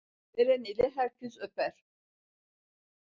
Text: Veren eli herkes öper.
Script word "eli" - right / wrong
right